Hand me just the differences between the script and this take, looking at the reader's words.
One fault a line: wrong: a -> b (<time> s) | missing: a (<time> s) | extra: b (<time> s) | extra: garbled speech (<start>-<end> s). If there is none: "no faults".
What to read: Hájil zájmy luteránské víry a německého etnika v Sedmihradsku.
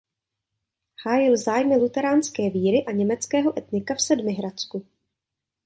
no faults